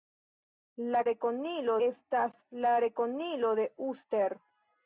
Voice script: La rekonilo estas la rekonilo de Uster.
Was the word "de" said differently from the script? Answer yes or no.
no